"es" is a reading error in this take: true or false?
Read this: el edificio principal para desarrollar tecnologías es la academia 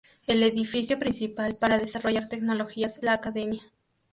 true